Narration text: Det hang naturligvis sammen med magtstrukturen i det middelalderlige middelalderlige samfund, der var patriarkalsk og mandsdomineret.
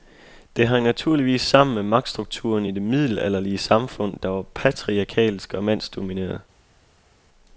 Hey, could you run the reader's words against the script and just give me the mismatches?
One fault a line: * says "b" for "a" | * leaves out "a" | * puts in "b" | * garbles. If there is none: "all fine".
* leaves out "middelalderlige"